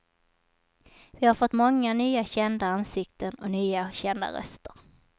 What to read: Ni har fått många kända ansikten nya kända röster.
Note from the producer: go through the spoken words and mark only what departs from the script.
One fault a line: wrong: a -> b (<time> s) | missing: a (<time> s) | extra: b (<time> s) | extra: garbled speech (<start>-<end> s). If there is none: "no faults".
wrong: Ni -> Vi (1.1 s)
extra: nya (1.9 s)
extra: och (3.3 s)